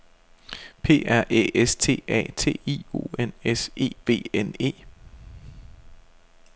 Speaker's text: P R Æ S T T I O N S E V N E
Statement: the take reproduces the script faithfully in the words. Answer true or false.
false